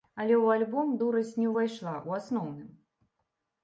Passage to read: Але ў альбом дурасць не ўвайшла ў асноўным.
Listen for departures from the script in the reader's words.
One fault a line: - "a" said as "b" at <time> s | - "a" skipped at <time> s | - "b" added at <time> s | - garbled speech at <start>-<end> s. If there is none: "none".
none